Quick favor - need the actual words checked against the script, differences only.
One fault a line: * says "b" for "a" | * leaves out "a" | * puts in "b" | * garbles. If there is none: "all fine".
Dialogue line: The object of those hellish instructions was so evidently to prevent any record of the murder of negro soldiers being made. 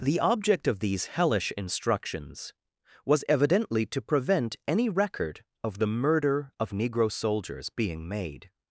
* says "these" for "those"
* leaves out "so"